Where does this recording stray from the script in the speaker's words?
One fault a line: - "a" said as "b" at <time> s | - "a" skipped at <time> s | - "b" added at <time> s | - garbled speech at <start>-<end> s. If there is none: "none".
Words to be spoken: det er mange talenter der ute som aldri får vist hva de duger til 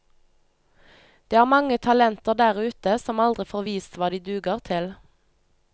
none